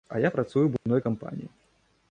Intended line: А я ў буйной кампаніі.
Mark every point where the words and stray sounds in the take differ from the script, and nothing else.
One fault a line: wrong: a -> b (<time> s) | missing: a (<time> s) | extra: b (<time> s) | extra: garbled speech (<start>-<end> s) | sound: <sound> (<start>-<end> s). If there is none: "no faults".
extra: працую (0.3 s)
sound: dropout (0.8-0.9 s)